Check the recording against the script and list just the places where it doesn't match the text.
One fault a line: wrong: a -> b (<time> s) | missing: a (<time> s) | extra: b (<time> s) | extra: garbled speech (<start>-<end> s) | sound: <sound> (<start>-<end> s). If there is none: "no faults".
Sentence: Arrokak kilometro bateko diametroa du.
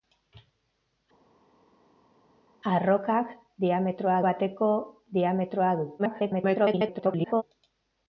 wrong: kilometro -> diametroa (3.7 s)
extra: garbled speech (6.0-7.4 s)